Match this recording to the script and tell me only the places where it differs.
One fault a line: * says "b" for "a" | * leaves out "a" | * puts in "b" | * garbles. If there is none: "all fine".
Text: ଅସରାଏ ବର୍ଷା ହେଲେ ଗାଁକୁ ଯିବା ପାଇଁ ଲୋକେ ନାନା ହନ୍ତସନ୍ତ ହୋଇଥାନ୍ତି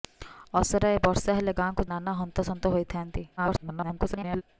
* leaves out "ଯିବା ପାଇଁ ଲୋକେ"
* garbles